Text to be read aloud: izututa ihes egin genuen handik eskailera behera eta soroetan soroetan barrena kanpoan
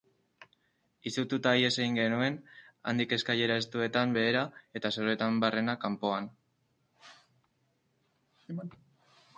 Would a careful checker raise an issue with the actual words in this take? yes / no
yes